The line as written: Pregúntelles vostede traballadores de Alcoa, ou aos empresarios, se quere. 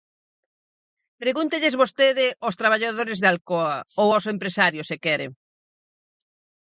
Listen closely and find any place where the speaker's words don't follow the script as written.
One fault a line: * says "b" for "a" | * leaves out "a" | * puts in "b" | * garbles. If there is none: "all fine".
* puts in "aos"